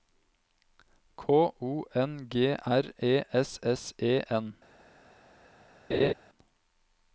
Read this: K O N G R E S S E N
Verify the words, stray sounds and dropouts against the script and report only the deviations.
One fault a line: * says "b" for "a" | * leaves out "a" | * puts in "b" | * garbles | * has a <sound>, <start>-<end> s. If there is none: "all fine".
* has a laugh, 5.9-6.1 s